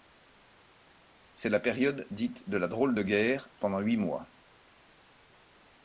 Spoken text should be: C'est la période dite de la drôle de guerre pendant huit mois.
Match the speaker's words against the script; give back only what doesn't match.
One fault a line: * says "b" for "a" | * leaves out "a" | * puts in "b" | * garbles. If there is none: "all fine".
all fine